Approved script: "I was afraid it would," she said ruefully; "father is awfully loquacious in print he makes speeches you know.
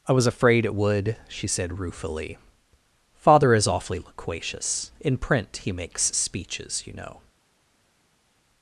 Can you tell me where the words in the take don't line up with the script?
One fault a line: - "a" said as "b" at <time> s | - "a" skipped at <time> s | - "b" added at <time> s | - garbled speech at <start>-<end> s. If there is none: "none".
none